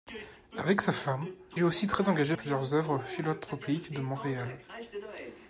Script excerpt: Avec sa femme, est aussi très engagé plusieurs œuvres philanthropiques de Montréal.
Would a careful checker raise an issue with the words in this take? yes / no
no